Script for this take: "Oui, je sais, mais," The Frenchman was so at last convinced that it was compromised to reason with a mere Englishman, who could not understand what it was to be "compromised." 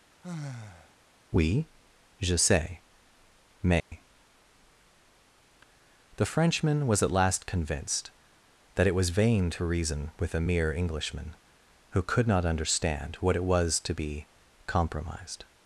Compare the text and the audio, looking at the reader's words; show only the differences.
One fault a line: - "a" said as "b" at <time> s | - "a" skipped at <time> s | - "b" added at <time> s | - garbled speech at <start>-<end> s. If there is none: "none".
- "so" skipped at 7.0 s
- "compromised" said as "vain" at 9.1 s